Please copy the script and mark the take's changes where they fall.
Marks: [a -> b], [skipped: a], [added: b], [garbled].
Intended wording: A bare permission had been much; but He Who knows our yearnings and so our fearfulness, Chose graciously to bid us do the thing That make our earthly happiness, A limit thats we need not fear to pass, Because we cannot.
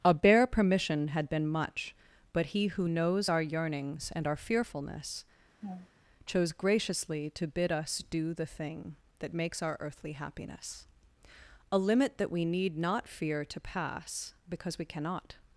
A bare permission had been much; but He Who knows our yearnings and [skipped: so] our fearfulness, Chose graciously to bid us do the thing That [make -> makes] our earthly happiness, A limit [thats -> that] we need not fear to pass, Because we cannot.